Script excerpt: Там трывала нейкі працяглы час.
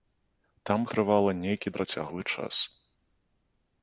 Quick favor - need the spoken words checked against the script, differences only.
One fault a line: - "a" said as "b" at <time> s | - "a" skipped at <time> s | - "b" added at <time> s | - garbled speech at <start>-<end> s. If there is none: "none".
none